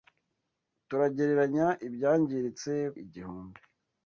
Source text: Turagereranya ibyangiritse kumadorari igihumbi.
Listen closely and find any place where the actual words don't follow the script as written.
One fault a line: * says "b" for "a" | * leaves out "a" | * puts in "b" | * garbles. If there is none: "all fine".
* leaves out "kumadorari"